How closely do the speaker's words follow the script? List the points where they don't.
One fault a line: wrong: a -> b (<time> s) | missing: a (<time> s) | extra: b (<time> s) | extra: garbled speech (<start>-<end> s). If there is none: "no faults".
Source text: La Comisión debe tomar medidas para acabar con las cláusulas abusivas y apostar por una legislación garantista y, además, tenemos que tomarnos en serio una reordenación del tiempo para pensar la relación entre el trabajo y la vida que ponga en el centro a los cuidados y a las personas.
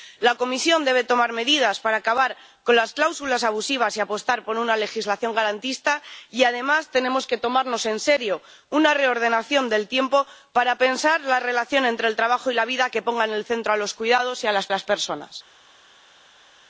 extra: las (14.7 s)